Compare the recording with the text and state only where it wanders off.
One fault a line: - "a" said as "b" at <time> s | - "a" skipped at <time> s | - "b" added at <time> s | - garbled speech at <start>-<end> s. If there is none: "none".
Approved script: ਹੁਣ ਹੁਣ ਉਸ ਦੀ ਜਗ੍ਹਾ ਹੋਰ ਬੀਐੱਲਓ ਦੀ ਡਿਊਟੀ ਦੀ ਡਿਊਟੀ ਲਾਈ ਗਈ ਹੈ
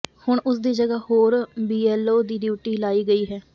- "ਹੁਣ" skipped at 0.4 s
- "ਦੀ ਡਿਊਟੀ" skipped at 2.8 s